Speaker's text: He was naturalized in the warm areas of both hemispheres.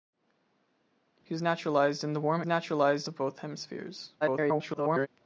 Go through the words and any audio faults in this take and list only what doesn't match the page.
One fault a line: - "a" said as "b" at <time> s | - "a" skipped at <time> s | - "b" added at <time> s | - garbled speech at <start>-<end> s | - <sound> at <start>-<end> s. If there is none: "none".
- "areas" said as "naturalized" at 2.4 s
- garbled speech at 4.2-5.1 s